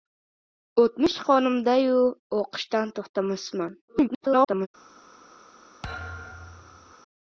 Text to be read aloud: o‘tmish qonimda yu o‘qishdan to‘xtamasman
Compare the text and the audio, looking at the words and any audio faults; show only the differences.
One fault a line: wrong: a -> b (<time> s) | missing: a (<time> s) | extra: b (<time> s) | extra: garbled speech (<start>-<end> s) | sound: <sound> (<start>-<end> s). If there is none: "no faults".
extra: garbled speech (3.9-4.7 s)
sound: thud (5.8-6.9 s)